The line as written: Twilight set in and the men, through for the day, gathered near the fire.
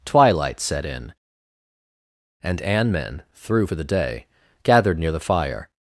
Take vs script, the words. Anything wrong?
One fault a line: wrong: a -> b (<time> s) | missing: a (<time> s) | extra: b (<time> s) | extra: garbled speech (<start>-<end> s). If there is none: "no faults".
wrong: the -> an (2.6 s)